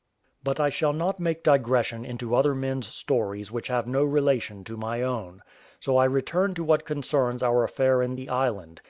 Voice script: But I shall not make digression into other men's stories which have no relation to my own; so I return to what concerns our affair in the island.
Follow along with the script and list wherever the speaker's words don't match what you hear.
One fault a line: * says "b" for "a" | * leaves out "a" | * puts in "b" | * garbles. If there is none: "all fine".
all fine